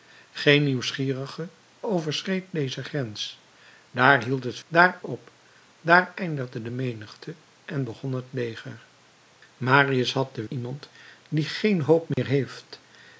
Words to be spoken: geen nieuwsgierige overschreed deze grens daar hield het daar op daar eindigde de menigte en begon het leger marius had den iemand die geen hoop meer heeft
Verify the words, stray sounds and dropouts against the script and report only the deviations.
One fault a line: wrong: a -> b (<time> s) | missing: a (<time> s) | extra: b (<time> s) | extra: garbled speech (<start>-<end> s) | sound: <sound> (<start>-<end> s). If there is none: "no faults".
sound: dropout (12.1-12.2 s)